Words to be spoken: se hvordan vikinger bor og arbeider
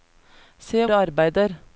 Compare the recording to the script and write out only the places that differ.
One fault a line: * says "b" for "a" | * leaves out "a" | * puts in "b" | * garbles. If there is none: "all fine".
* leaves out "hvordan vikinger bor"